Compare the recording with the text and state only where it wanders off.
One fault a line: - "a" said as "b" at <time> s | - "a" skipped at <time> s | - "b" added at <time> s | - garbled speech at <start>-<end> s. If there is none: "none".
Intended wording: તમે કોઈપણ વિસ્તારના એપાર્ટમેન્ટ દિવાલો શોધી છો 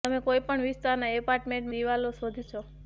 none